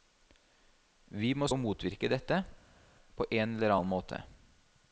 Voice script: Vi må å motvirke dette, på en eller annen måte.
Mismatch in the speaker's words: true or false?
false